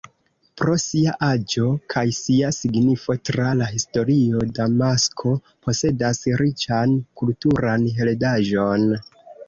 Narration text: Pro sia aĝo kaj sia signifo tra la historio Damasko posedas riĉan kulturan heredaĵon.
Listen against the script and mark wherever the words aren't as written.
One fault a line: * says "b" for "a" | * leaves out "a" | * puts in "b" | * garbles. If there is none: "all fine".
all fine